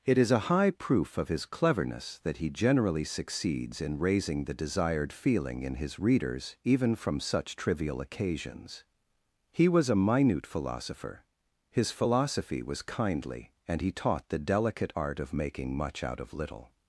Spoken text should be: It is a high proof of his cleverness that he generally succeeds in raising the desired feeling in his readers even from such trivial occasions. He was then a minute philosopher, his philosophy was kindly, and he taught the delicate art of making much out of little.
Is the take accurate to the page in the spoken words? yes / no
no